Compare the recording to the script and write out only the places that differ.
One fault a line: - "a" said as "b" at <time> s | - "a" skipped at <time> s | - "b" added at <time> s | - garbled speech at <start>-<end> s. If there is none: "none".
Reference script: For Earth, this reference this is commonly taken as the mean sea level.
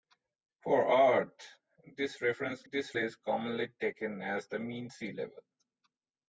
none